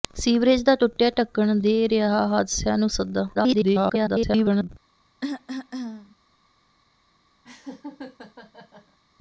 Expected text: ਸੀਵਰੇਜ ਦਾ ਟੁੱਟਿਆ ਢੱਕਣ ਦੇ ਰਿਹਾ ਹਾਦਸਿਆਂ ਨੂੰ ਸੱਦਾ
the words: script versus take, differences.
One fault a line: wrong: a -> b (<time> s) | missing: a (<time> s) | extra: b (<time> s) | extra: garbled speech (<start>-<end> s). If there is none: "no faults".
extra: garbled speech (3.3-4.7 s)